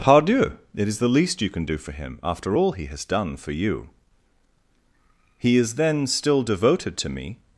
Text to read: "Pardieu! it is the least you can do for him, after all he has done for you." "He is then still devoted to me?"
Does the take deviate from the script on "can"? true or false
false